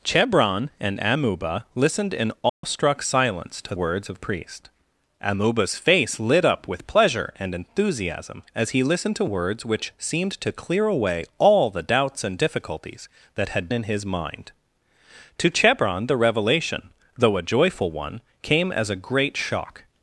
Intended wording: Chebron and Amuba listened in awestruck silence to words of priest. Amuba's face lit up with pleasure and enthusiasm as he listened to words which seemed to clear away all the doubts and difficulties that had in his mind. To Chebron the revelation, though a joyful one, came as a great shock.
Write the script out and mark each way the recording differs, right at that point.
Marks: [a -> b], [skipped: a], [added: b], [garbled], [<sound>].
Chebron and Amuba listened in awestruck [dropout] silence to words of priest. Amuba's face lit up with pleasure and enthusiasm as he listened to words which seemed to clear away all the doubts and difficulties that had in his mind. To Chebron the revelation, though a joyful one, came as a great shock.